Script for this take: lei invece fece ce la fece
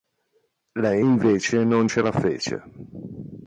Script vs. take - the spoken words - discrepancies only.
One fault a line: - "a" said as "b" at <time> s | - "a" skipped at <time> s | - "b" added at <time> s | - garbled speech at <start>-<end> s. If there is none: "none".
- "fece" said as "non" at 1.6 s